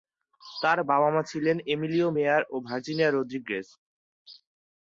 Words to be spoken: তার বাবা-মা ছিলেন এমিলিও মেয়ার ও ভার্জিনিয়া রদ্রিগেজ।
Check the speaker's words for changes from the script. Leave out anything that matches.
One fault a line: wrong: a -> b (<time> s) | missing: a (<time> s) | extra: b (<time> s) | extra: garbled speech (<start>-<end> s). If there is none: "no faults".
no faults